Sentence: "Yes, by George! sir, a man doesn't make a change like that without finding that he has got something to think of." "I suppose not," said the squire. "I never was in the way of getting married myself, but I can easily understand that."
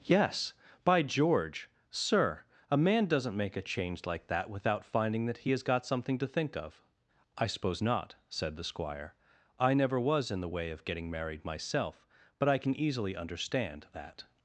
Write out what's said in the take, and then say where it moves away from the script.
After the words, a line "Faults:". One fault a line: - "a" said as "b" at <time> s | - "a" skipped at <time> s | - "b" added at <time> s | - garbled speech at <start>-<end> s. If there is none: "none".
"Yes, by George! sir, a man doesn't make a change like that without finding that he has got something to think of." "I suppose not," said the squire. "I never was in the way of getting married myself, but I can easily understand that."
Faults:
none